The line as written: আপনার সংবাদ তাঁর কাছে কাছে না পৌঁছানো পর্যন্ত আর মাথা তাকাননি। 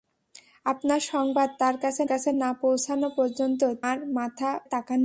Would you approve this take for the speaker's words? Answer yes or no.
yes